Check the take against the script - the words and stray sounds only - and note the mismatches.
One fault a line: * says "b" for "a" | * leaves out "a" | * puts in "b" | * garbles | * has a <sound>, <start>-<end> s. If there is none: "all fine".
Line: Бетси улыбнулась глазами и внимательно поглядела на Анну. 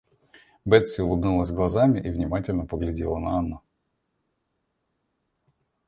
all fine